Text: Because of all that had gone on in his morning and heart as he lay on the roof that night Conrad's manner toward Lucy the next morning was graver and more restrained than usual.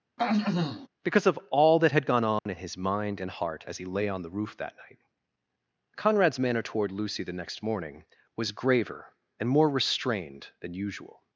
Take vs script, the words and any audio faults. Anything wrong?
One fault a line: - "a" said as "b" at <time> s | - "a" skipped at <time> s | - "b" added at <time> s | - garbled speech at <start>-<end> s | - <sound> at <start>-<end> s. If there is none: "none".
- throat clearing at 0.2-0.9 s
- dropout at 2.4-2.5 s
- "morning" said as "mind" at 2.8 s